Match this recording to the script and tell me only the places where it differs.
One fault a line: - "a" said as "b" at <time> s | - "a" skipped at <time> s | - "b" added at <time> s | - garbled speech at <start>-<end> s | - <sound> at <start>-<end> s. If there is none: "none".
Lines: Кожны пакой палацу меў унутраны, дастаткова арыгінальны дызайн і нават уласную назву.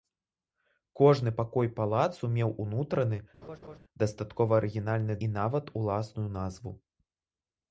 - laugh at 3.4-3.8 s
- "дызайн" skipped at 5.1 s